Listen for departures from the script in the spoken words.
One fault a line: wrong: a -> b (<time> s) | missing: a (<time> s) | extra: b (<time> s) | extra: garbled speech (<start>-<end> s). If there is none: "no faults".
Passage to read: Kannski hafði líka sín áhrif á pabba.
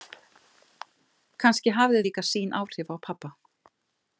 no faults